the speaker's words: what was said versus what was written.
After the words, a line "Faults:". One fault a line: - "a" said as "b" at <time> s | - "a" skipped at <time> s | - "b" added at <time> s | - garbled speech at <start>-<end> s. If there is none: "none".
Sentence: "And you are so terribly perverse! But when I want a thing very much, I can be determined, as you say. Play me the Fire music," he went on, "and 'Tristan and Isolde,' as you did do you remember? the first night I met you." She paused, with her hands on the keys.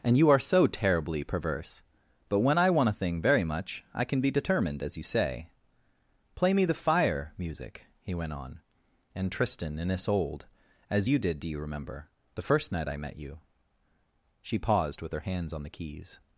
"And you are so terribly perverse! But when I want a thing very much, I can be determined, as you say. Play me the Fire music," he went on, "and 'Tristan and Isolde,' as you did do you remember? the first night I met you." She paused, with her hands on the keys.
Faults:
none